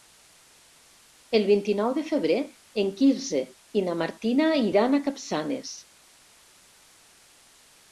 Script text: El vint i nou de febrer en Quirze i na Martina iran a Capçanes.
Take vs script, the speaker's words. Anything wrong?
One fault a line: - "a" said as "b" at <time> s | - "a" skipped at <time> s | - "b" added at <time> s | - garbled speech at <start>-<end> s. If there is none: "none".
none